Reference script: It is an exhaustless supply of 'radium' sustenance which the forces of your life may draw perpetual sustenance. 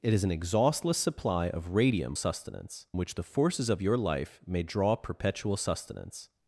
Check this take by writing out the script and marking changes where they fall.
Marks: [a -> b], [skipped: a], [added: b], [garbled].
It is an exhaustless supply of 'radium' sustenance which the forces of your life may draw perpetual sustenance.